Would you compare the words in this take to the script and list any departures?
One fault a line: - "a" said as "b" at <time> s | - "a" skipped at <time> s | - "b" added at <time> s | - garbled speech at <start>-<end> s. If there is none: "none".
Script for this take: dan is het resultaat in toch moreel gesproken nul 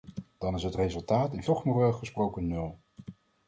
none